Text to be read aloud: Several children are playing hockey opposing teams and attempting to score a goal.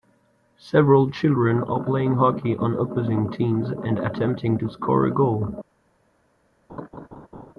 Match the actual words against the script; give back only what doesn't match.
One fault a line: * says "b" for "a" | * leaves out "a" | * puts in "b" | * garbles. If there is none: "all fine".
* puts in "on"